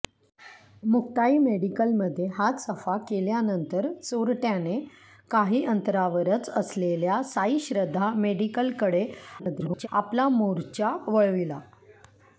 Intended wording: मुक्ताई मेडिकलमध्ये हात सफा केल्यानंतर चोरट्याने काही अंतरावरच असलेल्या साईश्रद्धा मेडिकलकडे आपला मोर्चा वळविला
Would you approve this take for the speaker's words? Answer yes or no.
no